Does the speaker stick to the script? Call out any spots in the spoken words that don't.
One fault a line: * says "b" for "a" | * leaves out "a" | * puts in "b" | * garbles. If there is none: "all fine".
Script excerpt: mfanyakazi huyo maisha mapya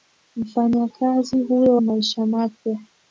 all fine